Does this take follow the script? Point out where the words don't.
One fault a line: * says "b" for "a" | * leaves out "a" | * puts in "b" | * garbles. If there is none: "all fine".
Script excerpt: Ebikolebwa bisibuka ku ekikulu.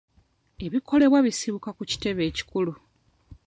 * puts in "kitebe"